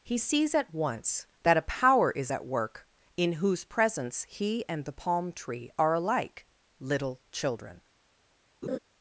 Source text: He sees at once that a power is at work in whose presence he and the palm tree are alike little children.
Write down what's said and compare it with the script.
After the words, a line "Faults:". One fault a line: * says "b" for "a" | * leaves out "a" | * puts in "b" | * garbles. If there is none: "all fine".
He sees at once that a power is at work in whose presence he and the palm tree are alike little children.
Faults:
all fine